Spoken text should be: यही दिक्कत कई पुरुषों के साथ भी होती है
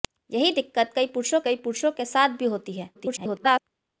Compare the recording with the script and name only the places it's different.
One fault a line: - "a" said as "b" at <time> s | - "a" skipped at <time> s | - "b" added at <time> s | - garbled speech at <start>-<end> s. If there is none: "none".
- "कई पुरुषों" added at 1.4 s
- garbled speech at 2.9-3.6 s